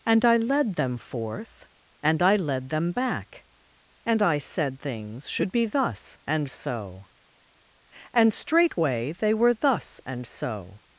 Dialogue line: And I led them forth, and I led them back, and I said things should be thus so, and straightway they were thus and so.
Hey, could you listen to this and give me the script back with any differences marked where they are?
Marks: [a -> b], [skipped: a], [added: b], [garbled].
And I led them forth, and I led them back, and I said things should be thus [added: and] so, and straightway they were thus and so.